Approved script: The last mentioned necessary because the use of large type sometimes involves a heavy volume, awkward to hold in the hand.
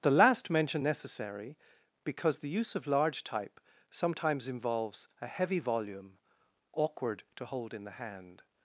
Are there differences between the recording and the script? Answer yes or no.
no